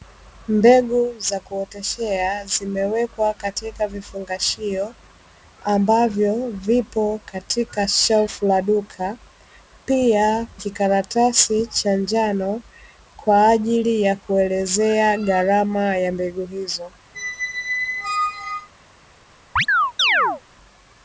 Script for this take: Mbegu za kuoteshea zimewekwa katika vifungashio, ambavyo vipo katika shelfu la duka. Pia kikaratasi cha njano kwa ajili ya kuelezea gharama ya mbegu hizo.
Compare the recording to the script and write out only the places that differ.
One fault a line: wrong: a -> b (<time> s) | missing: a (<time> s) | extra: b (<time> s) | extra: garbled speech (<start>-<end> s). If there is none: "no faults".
no faults